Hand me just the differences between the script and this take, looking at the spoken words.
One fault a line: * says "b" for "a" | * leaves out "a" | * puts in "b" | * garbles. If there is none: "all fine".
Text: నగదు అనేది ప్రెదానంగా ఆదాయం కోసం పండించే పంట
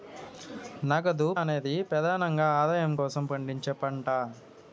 all fine